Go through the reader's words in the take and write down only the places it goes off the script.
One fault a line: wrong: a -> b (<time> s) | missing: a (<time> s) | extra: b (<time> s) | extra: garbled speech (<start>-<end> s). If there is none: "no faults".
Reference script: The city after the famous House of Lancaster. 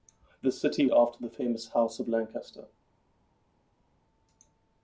no faults